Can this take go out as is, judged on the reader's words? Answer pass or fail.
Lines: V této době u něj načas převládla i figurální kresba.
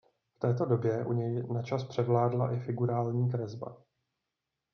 pass